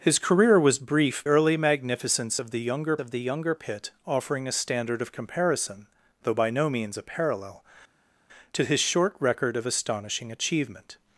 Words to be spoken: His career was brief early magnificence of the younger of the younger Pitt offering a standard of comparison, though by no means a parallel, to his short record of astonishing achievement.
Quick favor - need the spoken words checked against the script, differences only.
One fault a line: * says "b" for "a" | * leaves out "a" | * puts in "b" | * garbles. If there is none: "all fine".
all fine